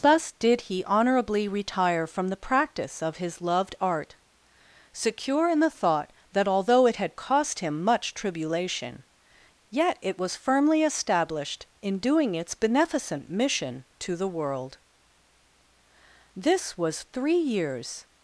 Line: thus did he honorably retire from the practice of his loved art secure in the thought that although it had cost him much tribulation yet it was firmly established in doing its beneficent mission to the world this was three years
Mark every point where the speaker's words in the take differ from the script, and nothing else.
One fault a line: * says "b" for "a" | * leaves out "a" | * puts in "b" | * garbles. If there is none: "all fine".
all fine